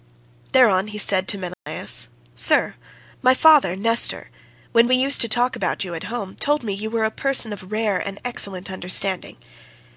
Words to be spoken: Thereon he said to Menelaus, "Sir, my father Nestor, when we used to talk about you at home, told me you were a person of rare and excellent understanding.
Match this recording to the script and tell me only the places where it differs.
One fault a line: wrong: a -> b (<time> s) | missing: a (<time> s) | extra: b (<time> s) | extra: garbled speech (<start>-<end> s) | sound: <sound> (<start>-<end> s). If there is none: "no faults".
sound: dropout (1.5-1.7 s)